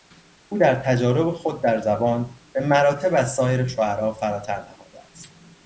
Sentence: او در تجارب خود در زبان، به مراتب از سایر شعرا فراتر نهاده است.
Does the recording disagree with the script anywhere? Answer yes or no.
no